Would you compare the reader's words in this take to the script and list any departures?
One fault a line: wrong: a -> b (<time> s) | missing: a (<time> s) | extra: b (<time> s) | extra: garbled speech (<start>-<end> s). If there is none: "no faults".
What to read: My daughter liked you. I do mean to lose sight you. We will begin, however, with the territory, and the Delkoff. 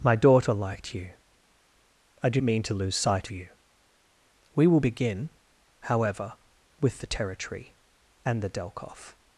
no faults